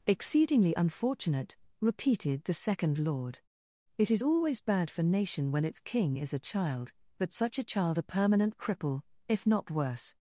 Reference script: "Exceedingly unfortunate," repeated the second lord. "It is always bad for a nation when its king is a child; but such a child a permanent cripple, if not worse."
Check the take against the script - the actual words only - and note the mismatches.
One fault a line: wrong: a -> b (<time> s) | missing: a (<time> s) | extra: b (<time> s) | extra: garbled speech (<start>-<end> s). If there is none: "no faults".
missing: a (5.0 s)